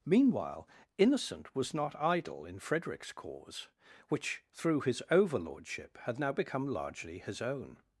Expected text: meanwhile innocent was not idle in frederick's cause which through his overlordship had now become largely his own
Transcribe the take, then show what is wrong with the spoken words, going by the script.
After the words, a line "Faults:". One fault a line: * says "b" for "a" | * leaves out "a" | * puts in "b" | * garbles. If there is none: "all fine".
meanwhile innocent was not idle in frederick's cause which through his overlordship had now become largely his own
Faults:
all fine